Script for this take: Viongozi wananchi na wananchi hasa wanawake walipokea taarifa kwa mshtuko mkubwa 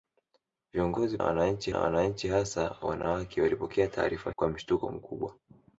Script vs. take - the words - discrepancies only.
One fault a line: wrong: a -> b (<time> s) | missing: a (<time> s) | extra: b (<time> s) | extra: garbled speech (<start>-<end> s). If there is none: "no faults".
no faults